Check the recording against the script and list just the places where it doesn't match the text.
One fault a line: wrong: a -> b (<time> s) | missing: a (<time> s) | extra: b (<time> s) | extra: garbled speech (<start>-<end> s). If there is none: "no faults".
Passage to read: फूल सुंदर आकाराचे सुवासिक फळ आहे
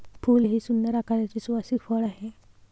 extra: हे (0.4 s)